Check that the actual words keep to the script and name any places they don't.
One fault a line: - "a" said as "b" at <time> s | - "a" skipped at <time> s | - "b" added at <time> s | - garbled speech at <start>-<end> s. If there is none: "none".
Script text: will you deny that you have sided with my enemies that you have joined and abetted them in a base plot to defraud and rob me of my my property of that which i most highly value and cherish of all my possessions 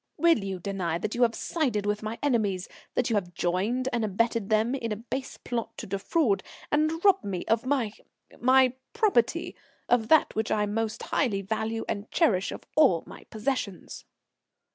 none